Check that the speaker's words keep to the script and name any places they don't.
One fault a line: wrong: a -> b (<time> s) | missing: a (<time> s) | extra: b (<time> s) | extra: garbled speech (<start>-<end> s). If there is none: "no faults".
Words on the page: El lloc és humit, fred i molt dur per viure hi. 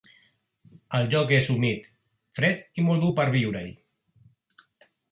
no faults